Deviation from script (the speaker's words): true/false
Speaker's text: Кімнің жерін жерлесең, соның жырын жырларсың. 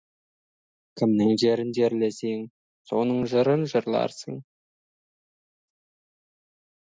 false